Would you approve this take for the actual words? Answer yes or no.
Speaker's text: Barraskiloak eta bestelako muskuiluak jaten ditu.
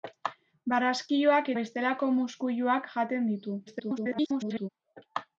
no